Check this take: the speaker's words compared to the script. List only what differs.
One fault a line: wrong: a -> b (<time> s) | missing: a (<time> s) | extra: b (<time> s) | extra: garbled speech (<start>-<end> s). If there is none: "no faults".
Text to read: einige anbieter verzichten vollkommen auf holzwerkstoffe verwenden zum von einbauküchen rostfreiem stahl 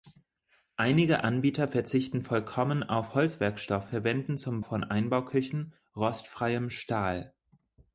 no faults